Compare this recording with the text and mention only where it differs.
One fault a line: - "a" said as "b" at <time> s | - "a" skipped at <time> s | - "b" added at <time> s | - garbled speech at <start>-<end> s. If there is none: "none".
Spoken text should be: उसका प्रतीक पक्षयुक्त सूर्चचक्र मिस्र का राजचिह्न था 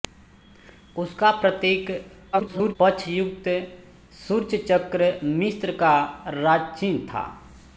- garbled speech at 2.3-2.8 s